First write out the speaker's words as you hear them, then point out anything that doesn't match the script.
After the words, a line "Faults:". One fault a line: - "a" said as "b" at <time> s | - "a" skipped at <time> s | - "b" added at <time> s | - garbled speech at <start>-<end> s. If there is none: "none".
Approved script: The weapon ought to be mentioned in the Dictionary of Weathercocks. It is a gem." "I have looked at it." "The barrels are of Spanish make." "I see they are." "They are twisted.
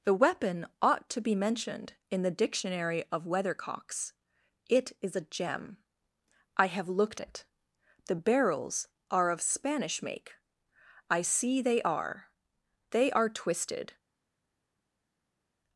The weapon ought to be mentioned in the Dictionary of Weathercocks. It is a gem." "I have looked it." "The barrels are of Spanish make." "I see they are." "They are twisted.
Faults:
- "at" skipped at 7.2 s